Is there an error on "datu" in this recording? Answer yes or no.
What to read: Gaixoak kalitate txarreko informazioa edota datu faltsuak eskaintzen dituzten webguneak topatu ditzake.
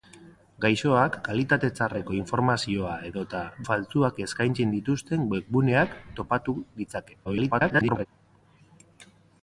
yes